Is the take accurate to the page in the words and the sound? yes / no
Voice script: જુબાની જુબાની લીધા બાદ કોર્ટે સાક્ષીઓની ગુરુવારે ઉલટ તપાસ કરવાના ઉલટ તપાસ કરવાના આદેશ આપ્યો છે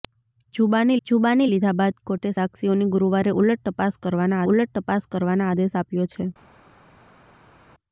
yes